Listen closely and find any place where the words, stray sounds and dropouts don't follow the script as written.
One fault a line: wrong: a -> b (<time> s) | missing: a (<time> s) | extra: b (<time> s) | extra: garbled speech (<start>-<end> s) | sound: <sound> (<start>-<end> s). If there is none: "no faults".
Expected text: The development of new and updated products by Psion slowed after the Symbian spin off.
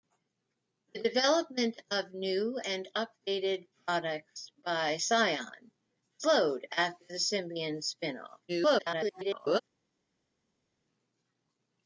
extra: garbled speech (8.5-9.6 s)